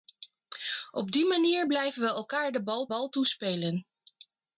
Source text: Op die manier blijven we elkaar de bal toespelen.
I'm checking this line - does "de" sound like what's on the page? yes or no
yes